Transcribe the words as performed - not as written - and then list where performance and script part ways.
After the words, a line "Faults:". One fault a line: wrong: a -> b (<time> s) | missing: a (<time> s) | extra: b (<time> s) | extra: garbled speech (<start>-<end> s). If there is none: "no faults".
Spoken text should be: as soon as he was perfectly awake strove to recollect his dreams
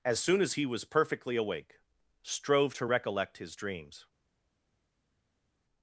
as soon as he was perfectly awake strove to recollect his dreams
Faults:
no faults